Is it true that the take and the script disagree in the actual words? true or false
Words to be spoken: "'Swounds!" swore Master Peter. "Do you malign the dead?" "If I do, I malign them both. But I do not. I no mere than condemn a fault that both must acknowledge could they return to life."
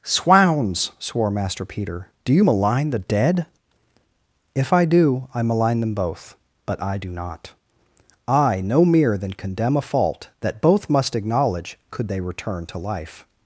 false